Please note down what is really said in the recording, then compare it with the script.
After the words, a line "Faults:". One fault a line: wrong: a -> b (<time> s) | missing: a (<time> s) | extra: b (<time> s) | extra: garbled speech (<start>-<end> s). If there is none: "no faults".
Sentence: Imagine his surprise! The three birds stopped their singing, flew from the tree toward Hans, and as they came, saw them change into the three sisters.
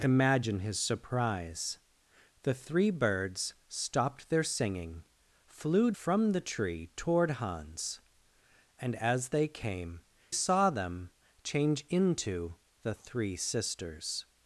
Imagine his surprise! The three birds stopped their singing, flew from the tree toward Hans, and as they came, saw them change into the three sisters.
Faults:
no faults